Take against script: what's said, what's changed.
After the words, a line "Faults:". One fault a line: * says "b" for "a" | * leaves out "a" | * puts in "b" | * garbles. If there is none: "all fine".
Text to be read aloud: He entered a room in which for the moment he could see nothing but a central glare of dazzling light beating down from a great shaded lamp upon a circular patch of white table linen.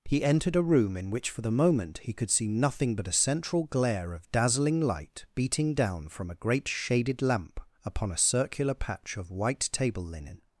He entered a room in which for the moment he could see nothing but a central glare of dazzling light beating down from a great shaded lamp upon a circular patch of white table linen.
Faults:
all fine